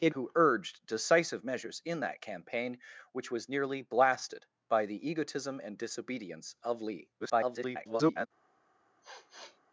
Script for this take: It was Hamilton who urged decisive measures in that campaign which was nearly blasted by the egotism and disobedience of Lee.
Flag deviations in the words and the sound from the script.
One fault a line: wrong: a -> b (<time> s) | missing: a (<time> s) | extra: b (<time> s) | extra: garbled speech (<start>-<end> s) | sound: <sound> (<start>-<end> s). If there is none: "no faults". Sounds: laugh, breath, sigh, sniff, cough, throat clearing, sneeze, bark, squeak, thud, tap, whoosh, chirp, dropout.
missing: was Hamilton (0.1 s)
extra: garbled speech (7.2-8.3 s)
sound: sniff (9.0-9.6 s)